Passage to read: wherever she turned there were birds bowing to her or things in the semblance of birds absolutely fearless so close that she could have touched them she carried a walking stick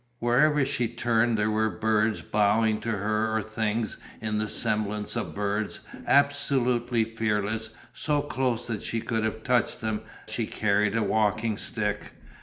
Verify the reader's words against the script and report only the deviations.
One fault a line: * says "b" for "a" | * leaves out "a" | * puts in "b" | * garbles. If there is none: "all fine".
all fine